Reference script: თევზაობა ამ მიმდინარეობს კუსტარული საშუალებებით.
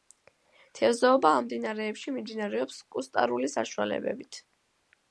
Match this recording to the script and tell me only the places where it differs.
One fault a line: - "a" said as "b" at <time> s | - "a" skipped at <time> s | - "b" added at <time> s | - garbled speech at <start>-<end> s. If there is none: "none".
- "მდინარეებში" added at 1.5 s